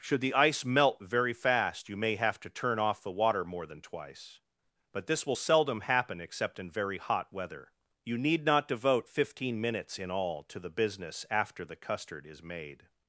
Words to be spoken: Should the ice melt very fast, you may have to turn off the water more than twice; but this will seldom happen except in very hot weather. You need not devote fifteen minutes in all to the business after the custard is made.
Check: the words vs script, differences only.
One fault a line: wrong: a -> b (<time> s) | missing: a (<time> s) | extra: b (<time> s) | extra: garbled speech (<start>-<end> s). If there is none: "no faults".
no faults